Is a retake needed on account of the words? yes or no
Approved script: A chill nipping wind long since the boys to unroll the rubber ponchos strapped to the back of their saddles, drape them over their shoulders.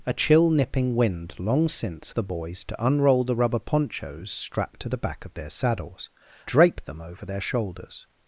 no